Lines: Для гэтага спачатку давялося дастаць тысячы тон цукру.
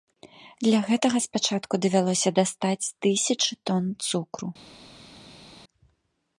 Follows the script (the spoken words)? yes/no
yes